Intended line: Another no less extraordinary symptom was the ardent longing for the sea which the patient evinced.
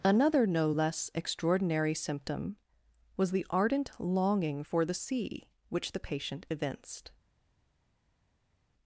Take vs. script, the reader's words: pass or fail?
pass